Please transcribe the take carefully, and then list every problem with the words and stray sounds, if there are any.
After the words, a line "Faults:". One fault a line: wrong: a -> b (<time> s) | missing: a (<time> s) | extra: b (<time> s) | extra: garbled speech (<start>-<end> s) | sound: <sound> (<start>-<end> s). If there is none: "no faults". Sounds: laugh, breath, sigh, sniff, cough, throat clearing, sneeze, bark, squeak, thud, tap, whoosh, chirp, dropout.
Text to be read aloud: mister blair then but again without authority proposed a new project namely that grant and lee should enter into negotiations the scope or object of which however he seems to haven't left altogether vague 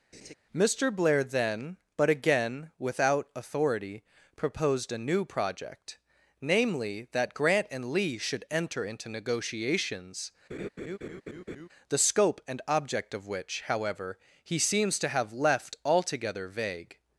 mister blair then but again without authority proposed a new project namely that grant and lee should enter into negotiations the scope and object of which however he seems to have left altogether vague
Faults:
sound: laugh (0.1-0.3 s)
sound: laugh (10.5-11.7 s)
wrong: or -> and (12.4 s)
wrong: haven't -> have (15.1 s)